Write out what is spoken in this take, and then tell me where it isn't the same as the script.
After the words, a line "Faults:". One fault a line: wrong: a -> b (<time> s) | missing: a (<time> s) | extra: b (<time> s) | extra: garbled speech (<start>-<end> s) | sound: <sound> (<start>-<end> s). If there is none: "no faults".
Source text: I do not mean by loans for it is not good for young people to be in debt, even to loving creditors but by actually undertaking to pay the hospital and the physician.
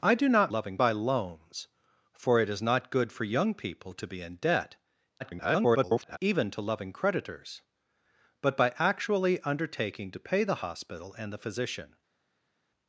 I do not loving by loans for it is not good for young people to be in debt, [garbled] even to loving creditors but by actually undertaking to pay the hospital and the physician.
Faults:
wrong: mean -> loving (0.5 s)
extra: garbled speech (5.2-6.2 s)